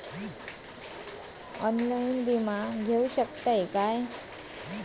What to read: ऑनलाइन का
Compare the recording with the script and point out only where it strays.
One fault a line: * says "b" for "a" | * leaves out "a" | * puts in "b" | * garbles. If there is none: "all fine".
* puts in "विमा घेऊ शकतय"